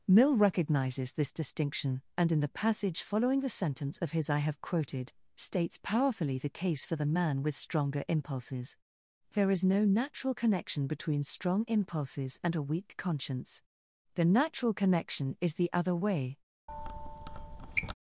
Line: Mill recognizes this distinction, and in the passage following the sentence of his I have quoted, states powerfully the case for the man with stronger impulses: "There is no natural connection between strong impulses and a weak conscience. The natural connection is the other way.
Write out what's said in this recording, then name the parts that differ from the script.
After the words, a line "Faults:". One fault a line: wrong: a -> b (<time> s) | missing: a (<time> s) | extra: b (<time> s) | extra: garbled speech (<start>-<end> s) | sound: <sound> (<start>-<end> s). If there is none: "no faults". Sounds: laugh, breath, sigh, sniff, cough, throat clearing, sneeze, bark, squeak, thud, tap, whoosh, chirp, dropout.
Mill recognizes this distinction, and in the passage following the sentence of his I have quoted, states powerfully the case for the man with stronger impulses: "There is no natural connection between strong impulses and a weak conscience. The natural connection is the other way.
Faults:
sound: squeak (16.7-17.9 s)